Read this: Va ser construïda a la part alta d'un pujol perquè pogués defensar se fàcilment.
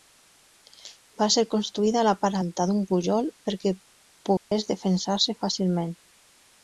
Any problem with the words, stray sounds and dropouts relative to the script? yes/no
yes